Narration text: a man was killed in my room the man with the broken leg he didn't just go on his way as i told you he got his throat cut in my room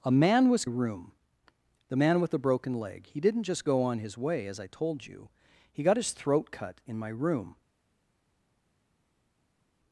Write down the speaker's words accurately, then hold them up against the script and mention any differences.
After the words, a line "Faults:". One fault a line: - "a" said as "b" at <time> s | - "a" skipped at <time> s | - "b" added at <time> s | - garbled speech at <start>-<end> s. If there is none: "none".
a man was room the man with the broken leg he didn't just go on his way as i told you he got his throat cut in my room
Faults:
- "killed in my" skipped at 0.7 s